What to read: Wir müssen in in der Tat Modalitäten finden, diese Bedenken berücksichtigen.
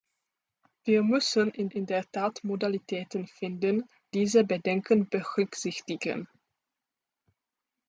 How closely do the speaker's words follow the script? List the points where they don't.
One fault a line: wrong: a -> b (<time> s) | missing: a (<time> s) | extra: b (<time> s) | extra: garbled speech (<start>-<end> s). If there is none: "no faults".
no faults